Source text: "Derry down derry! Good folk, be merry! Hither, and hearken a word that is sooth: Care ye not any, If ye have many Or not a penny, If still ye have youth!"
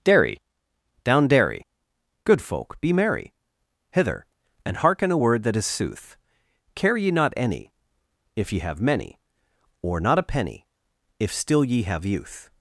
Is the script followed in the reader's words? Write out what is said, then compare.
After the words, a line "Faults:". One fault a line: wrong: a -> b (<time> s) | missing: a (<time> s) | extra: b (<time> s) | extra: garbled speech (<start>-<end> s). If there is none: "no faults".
"Derry down derry! Good folk, be merry! Hither, and hearken a word that is sooth: Care ye not any, If ye have many Or not a penny, If still ye have youth!"
Faults:
no faults